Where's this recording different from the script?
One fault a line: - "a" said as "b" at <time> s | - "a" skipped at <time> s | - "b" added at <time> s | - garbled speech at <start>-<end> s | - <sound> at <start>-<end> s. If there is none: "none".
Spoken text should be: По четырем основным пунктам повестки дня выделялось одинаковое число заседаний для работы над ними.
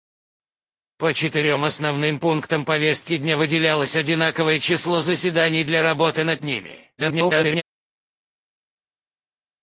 - garbled speech at 7.0-7.6 s